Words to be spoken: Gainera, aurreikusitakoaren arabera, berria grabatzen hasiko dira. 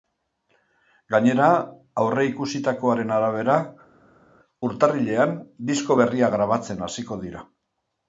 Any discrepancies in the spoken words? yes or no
yes